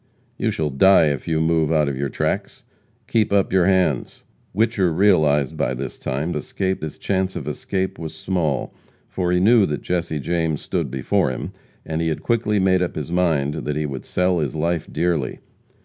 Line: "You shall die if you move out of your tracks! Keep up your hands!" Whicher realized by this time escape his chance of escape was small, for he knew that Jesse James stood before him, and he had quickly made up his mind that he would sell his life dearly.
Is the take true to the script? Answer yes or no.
yes